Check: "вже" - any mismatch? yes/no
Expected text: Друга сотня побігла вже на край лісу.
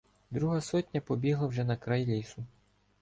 no